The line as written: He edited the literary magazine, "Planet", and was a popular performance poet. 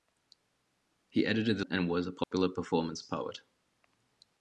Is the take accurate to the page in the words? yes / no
no